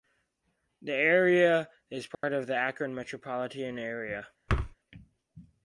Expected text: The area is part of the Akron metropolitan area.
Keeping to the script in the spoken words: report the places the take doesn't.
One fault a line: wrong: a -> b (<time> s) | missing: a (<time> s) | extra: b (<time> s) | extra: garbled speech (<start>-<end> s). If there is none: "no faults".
no faults